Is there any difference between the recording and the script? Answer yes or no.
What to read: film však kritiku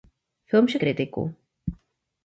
no